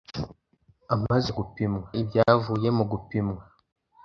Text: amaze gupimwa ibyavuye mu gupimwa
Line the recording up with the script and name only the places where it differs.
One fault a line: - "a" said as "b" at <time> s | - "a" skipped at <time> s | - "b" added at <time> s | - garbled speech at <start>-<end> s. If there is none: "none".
none